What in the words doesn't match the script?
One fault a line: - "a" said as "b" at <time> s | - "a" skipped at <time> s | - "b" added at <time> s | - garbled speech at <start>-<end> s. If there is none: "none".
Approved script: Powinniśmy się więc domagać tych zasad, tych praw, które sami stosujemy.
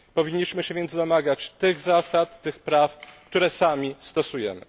none